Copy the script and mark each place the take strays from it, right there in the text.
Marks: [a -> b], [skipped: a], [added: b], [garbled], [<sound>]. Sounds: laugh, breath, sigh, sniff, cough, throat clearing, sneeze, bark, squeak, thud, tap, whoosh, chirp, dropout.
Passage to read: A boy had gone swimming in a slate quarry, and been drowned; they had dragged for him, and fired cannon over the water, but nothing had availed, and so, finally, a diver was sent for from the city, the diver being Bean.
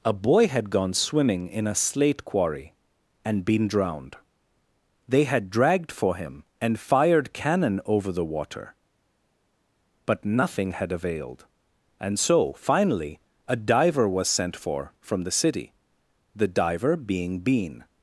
A boy had gone swimming in a slate quarry, and been drowned; they had dragged for him, and fired cannon over the water, but nothing had availed, and so, finally, a diver was sent for from the city, the diver being Bean.